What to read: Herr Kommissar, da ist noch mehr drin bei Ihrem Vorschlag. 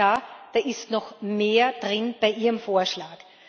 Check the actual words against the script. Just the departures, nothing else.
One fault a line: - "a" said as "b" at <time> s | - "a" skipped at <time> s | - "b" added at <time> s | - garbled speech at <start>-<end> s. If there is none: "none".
none